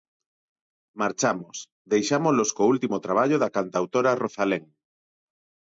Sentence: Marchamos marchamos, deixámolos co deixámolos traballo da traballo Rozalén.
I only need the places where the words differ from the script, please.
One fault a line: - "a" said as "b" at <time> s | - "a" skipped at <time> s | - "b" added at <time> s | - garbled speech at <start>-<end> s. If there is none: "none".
- "marchamos" skipped at 1.6 s
- "deixámolos" said as "último" at 2.7 s
- "traballo" said as "cantautora" at 3.6 s